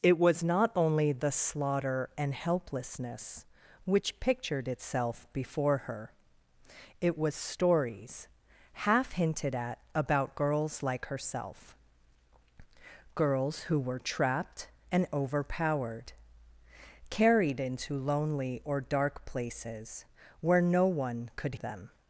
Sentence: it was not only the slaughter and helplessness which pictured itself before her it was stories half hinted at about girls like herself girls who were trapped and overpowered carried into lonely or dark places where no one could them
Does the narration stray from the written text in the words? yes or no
no